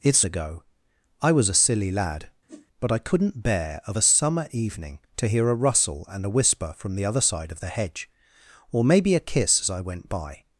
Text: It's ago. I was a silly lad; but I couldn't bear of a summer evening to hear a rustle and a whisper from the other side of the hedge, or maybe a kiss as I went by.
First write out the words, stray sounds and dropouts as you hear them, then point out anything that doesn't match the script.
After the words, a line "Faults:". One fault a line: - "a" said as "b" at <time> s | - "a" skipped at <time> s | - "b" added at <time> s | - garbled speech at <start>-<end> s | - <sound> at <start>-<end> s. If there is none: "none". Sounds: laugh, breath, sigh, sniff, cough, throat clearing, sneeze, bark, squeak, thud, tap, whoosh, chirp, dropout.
It's ago. I was a silly lad; but I couldn't bear of a summer evening to hear a rustle and a whisper from the other side of the hedge, or maybe a kiss as I went by.
Faults:
- whoosh at 2.5-2.7 s